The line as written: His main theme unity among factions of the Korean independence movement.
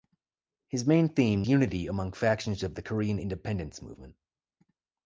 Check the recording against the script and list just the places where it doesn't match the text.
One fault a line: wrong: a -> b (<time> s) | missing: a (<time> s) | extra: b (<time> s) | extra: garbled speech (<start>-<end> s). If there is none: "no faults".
no faults